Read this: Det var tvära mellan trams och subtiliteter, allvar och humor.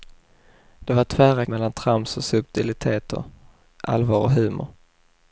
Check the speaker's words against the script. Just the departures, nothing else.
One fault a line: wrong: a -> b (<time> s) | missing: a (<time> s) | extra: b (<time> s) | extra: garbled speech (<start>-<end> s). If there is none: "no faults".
no faults